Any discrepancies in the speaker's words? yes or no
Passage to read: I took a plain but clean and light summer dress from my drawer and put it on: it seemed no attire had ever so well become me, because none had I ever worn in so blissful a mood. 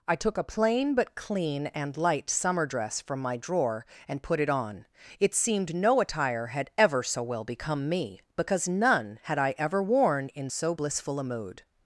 no